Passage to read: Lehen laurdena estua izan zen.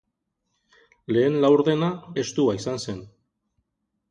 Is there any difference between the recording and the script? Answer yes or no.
no